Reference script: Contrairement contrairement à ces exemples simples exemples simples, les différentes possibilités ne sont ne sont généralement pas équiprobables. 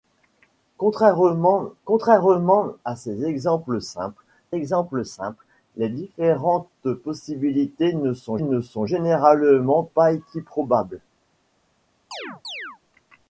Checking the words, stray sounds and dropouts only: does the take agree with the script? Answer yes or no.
no